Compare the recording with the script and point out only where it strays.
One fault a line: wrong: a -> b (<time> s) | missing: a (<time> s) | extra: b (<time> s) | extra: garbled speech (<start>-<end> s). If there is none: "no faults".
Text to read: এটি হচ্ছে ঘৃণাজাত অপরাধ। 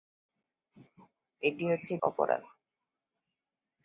missing: ঘৃণাজাত (1.9 s)